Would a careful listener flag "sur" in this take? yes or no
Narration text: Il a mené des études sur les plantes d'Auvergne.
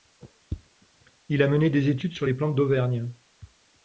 no